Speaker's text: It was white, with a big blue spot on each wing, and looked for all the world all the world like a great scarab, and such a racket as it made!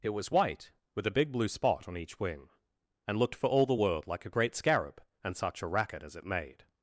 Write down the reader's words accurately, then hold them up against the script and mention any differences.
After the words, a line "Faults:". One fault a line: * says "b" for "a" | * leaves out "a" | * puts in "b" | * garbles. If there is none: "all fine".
It was white, with a big blue spot on each wing, and looked for all the world like a great scarab, and such a racket as it made!
Faults:
* leaves out "all the world"